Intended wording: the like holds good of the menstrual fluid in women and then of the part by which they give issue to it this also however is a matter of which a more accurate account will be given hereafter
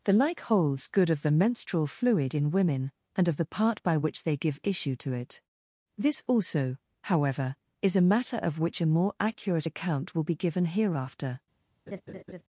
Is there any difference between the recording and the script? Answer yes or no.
yes